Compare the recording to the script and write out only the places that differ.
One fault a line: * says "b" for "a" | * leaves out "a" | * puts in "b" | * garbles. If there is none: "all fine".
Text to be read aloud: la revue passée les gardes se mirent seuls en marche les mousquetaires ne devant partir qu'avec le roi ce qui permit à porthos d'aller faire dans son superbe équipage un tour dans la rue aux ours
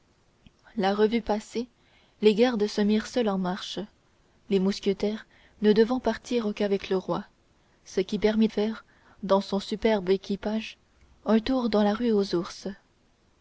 * leaves out "à porthos d'aller"